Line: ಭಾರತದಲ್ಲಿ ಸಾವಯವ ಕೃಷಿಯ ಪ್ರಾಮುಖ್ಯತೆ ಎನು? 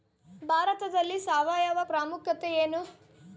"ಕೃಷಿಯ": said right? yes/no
no